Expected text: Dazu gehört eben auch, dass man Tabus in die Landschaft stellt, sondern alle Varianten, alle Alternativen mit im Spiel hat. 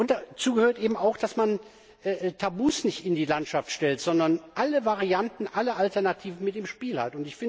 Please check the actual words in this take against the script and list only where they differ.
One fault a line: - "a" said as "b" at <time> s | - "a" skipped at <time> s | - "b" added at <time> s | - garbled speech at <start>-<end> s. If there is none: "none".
- "nicht" added at 2.8 s